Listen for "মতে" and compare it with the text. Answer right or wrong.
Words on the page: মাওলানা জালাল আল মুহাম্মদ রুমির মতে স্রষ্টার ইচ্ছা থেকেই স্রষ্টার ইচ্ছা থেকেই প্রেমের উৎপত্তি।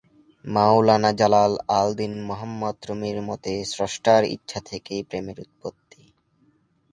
right